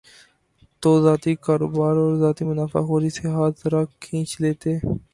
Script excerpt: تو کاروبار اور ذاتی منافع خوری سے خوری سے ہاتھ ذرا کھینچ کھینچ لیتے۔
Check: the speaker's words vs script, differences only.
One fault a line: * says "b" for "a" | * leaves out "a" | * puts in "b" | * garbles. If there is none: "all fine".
* puts in "ذاتی"
* leaves out "خوری سے"
* leaves out "کھینچ"